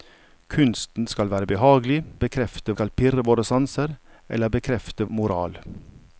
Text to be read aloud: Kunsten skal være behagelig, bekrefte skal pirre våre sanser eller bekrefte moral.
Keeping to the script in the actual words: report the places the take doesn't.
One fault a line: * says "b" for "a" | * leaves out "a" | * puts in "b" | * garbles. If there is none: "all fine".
all fine